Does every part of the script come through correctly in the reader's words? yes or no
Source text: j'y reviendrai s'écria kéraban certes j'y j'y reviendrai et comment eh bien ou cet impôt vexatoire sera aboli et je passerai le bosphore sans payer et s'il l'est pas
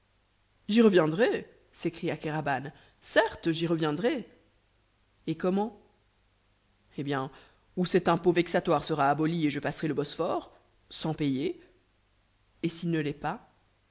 no